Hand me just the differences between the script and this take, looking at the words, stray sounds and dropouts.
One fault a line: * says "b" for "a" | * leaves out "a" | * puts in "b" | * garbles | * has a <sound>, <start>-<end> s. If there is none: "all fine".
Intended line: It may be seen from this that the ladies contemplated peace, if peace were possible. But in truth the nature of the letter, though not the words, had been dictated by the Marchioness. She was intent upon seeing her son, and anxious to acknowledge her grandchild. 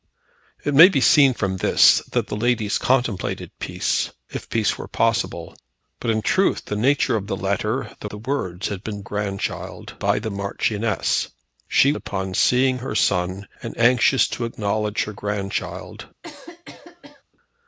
* leaves out "not"
* says "grandchild" for "dictated"
* leaves out "was intent"
* has a cough, 16.2-17.2 s